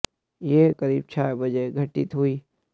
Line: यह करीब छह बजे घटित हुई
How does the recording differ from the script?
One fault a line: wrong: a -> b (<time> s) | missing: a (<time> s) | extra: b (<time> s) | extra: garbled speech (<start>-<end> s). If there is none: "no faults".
no faults